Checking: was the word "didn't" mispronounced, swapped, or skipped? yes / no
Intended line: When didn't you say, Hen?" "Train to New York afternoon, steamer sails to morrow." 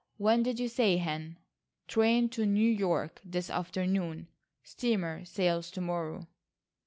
yes